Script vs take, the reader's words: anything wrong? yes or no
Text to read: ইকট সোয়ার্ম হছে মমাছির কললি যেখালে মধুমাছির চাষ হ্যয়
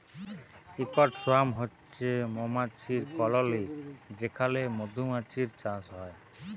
no